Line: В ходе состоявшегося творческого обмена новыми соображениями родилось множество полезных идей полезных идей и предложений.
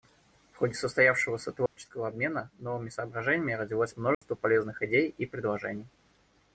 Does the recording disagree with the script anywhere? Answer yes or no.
yes